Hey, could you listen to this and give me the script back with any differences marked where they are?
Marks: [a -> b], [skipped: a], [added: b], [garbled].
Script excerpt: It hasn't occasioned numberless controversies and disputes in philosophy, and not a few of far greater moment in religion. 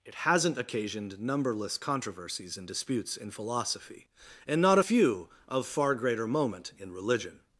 It hasn't occasioned numberless controversies and disputes in philosophy, and not a few of far greater moment in religion.